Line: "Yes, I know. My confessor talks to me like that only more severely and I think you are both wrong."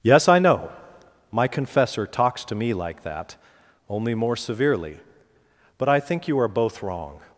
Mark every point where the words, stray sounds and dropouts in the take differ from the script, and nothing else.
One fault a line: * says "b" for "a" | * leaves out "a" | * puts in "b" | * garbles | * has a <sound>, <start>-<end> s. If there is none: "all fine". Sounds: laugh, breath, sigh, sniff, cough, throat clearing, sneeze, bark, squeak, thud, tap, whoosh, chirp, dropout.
* says "but" for "and"